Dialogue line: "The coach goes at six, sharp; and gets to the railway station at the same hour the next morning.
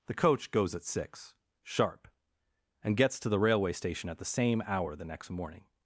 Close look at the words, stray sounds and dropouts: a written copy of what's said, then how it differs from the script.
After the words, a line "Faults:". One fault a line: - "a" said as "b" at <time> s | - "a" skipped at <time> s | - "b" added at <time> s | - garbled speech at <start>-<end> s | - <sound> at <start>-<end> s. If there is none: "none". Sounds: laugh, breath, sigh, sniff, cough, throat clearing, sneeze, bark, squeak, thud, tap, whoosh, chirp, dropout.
"The coach goes at six, sharp; and gets to the railway station at the same hour the next morning.
Faults:
none